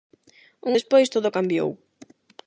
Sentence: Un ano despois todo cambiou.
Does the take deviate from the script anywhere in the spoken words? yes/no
yes